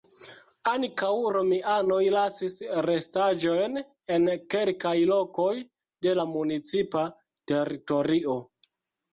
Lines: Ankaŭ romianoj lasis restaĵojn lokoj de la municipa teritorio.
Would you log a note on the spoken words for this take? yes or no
yes